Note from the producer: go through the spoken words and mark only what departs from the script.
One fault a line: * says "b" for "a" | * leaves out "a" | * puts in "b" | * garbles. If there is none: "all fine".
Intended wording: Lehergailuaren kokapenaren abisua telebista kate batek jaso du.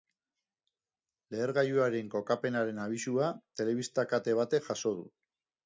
all fine